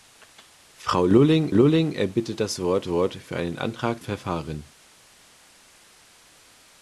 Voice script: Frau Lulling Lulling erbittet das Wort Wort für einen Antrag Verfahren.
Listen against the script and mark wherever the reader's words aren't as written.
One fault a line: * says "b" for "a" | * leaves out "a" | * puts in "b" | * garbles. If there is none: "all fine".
all fine